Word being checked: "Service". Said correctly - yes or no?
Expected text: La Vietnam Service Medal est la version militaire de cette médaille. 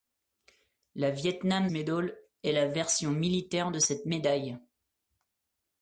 no